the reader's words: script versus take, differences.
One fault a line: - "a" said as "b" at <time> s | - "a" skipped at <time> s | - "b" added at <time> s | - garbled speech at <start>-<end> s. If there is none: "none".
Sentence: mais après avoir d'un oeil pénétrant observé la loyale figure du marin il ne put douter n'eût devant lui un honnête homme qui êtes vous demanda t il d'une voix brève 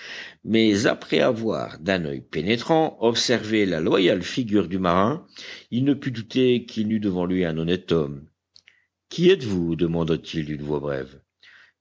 - "qu'il" added at 6.7 s